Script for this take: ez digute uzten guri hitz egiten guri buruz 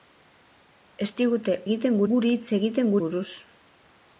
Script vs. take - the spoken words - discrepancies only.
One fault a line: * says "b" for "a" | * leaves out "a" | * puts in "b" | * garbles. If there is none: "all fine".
* says "egiten" for "uzten"
* leaves out "guri"